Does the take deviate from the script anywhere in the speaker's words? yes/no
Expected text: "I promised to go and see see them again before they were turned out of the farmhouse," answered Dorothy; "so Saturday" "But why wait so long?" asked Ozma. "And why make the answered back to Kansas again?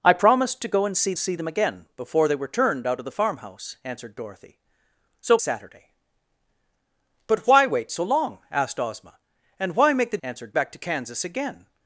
no